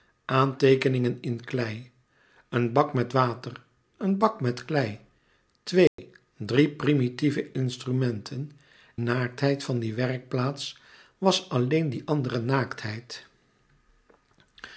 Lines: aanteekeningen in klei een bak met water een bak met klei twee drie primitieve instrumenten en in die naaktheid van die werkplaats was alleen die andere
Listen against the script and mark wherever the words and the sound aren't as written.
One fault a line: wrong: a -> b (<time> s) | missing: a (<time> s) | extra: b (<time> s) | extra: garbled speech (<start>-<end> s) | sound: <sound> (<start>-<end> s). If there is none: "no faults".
sound: dropout (5.9-6.0 s)
missing: en in die (8.5 s)